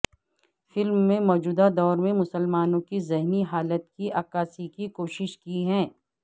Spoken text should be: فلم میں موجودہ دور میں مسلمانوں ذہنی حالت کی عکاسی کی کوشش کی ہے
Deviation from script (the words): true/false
true